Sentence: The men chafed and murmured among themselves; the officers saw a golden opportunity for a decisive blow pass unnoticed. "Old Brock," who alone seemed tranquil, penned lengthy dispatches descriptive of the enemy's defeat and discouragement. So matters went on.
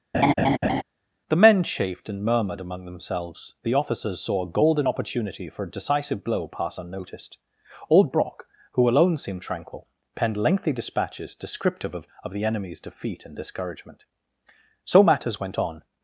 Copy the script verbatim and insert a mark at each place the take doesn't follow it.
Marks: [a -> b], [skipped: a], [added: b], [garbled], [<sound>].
[laugh] The men chafed and murmured among themselves; the officers saw a golden opportunity for a decisive blow pass unnoticed. "Old Brock," who alone seemed tranquil, penned lengthy dispatches descriptive of [added: of] the enemy's defeat and discouragement. So matters went on.